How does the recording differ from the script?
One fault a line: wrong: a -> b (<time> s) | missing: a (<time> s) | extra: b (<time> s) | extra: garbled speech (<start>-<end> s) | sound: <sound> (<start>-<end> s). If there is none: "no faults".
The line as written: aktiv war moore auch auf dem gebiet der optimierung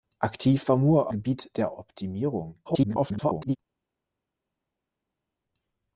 missing: auch auf dem (1.1 s)
extra: garbled speech (2.7-3.6 s)